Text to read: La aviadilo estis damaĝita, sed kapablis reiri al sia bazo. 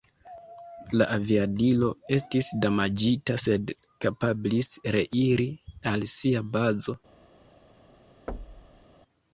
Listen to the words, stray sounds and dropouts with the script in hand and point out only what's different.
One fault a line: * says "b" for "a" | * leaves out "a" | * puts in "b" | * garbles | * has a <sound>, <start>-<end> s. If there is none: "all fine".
* has a thud, 8.3-8.8 s